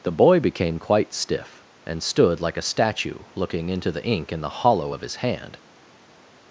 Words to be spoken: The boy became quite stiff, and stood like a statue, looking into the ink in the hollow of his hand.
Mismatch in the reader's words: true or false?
false